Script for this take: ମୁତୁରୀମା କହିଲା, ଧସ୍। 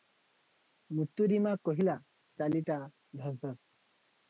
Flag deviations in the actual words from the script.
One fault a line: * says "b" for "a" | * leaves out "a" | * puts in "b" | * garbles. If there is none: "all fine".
* puts in "ଚାଲିଟା ଧସ୍"